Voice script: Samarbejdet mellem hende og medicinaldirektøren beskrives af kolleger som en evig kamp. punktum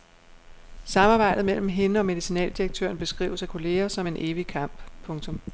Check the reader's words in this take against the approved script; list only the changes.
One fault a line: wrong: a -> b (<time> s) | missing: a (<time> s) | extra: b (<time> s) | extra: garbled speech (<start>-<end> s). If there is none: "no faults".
no faults